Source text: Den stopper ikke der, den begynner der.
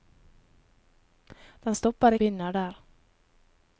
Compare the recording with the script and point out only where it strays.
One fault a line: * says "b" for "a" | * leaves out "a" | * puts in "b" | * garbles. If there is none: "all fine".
* leaves out "ikke der den"